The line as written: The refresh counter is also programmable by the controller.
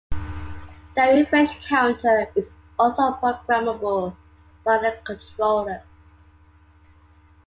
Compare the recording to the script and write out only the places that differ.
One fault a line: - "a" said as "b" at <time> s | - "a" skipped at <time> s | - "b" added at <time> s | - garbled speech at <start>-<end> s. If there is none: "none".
none